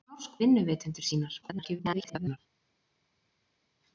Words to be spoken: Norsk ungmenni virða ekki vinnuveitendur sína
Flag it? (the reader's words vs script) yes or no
yes